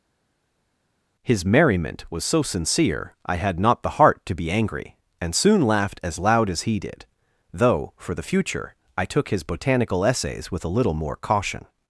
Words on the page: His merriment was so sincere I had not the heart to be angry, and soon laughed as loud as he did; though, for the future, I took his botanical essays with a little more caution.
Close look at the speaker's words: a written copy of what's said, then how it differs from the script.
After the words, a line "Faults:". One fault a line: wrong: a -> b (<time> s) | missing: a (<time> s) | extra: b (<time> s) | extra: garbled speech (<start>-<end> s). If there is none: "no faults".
His merriment was so sincere I had not the heart to be angry, and soon laughed as loud as he did; though, for the future, I took his botanical essays with a little more caution.
Faults:
no faults